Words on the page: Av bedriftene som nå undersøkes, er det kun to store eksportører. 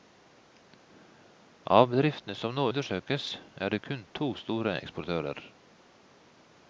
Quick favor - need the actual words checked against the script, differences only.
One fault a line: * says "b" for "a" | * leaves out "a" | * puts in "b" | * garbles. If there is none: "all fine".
all fine